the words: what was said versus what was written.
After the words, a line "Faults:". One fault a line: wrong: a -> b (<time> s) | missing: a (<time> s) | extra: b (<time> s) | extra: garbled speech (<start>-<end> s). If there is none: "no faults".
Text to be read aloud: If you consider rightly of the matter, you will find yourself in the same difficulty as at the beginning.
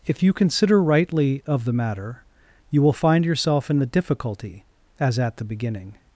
If you consider rightly of the matter, you will find yourself in the difficulty as at the beginning.
Faults:
missing: same (3.9 s)